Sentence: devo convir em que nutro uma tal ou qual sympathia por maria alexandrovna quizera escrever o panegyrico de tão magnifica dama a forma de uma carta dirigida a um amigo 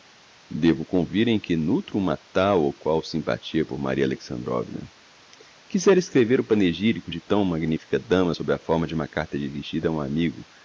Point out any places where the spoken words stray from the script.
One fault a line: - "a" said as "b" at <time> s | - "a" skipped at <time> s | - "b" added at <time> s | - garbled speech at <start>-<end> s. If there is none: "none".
- "sob" added at 8.3 s